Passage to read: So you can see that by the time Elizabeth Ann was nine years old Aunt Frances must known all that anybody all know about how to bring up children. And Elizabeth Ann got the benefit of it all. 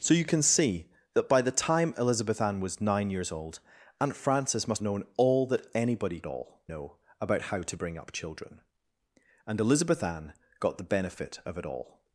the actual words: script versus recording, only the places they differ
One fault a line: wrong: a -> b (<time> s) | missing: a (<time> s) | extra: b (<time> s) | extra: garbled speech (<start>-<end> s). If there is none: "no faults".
no faults